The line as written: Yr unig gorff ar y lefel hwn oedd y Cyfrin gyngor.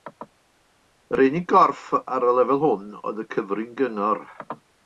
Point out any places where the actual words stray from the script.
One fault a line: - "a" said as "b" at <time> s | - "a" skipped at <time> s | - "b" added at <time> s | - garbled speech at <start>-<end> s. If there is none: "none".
none